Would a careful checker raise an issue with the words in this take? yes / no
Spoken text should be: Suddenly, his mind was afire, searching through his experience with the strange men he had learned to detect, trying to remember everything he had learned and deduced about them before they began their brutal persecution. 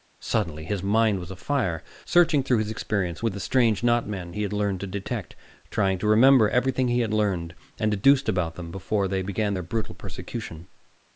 yes